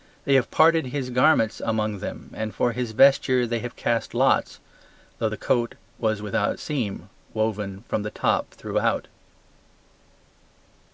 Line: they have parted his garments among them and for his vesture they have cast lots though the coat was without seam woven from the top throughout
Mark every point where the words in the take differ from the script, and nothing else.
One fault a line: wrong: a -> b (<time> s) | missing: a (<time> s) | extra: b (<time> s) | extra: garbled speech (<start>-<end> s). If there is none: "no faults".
no faults